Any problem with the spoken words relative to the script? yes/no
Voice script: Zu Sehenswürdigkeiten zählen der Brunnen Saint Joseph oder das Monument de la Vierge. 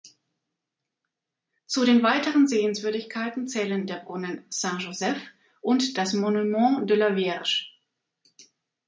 yes